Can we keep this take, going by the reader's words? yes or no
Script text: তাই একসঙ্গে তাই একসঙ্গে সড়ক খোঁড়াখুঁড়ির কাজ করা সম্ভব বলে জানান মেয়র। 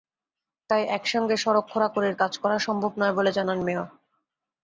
no